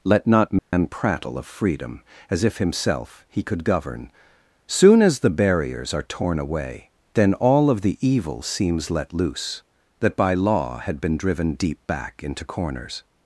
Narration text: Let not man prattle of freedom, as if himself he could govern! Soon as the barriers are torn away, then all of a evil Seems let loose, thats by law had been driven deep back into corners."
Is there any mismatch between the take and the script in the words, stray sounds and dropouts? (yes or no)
yes